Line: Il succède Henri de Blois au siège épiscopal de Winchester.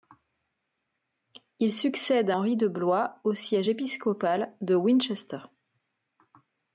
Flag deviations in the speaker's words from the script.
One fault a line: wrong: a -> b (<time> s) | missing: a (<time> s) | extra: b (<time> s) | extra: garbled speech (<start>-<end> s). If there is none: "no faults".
no faults